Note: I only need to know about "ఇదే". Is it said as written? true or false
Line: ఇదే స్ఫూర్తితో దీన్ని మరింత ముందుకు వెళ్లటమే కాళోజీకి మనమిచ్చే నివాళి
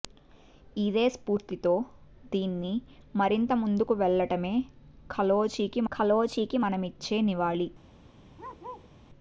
true